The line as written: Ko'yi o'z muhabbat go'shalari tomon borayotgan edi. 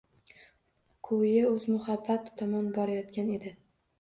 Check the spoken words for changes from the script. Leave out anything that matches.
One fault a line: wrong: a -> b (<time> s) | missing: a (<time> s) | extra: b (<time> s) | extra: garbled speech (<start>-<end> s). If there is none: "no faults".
missing: go'shalari (2.3 s)